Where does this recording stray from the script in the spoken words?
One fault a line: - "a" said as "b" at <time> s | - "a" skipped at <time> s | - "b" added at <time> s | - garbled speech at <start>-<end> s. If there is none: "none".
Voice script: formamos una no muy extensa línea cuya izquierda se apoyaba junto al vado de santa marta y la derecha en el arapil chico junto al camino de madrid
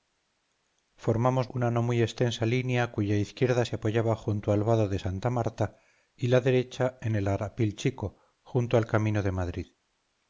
none